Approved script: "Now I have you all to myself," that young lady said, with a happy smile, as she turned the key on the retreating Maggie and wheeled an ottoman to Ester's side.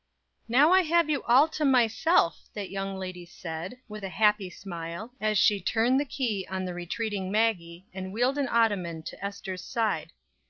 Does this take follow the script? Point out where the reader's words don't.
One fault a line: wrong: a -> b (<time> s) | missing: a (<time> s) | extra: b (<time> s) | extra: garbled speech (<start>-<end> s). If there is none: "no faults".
no faults